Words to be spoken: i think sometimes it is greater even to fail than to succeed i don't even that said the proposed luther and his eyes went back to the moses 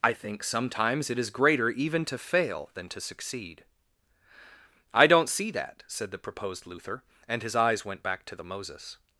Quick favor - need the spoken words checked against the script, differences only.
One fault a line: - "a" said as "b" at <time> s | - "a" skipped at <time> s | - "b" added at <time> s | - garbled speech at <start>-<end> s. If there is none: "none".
- "even" said as "see" at 5.3 s